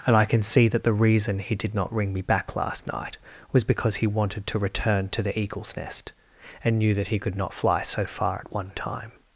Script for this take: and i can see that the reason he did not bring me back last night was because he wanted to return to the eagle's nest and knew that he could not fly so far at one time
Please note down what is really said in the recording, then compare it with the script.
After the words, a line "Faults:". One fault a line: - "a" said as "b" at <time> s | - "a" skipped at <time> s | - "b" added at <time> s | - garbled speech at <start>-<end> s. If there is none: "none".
and i can see that the reason he did not ring me back last night was because he wanted to return to the eagle's nest and knew that he could not fly so far at one time
Faults:
- "bring" said as "ring" at 1.9 s